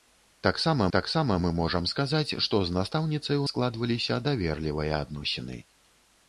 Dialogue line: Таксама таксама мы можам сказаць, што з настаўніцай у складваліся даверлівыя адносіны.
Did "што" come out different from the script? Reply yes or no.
no